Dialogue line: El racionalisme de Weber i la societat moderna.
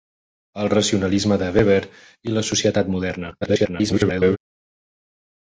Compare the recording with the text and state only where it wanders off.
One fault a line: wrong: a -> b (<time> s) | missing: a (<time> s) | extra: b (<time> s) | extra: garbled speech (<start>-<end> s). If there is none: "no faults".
extra: garbled speech (3.4-4.4 s)